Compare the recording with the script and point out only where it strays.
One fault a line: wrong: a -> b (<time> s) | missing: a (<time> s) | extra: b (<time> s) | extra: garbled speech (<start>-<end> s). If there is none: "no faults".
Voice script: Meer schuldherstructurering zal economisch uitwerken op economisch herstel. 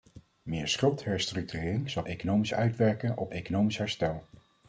no faults